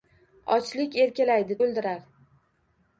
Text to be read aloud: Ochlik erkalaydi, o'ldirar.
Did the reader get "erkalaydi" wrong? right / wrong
right